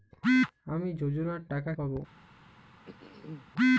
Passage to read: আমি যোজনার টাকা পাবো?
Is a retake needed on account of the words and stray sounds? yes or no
yes